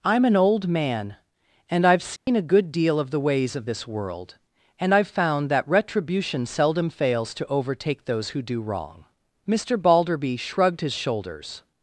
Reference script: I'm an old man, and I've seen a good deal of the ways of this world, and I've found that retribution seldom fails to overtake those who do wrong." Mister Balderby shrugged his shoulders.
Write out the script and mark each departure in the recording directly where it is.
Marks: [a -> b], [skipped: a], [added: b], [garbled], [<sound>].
I'm an old man, and I've seen [dropout] a good deal of the ways of this world, and I've found that retribution seldom fails to overtake those who do wrong." Mister Balderby shrugged his shoulders.